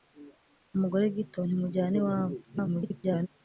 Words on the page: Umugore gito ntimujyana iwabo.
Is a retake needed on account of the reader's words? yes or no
yes